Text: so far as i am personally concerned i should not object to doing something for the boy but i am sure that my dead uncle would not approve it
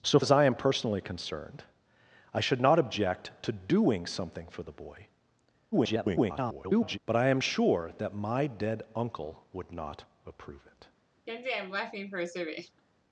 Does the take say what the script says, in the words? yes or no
no